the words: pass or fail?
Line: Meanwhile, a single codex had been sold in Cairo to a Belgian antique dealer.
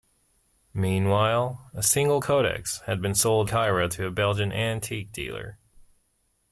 fail